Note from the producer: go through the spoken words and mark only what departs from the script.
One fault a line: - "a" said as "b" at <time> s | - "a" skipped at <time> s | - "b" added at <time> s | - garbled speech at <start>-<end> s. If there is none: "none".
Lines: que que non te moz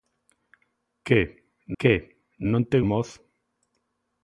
none